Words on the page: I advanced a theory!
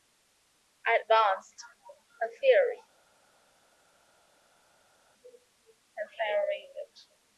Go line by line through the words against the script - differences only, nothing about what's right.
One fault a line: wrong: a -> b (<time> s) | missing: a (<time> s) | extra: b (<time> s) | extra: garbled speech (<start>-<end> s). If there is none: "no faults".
no faults